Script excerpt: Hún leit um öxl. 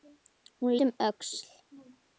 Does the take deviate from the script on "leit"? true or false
true